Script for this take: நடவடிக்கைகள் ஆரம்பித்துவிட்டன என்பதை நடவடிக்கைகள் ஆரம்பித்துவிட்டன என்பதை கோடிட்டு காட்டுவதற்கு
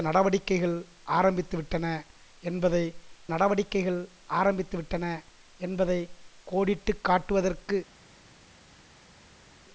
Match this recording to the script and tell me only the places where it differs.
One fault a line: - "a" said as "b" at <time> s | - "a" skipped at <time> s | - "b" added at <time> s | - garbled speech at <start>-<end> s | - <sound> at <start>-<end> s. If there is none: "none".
none